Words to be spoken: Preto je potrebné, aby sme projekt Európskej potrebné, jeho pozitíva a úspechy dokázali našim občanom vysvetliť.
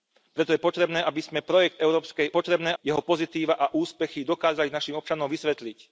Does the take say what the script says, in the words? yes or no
yes